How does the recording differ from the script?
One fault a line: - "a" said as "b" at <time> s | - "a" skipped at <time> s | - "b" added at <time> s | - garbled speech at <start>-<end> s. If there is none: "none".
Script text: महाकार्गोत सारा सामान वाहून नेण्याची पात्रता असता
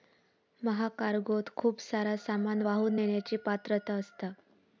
- "खूप" added at 1.6 s